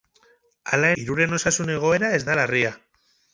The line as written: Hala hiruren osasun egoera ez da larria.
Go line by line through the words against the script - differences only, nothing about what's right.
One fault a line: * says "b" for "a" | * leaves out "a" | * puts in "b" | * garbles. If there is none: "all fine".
all fine